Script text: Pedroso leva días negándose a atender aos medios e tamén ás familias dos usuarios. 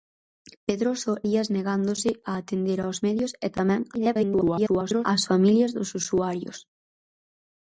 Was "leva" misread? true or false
true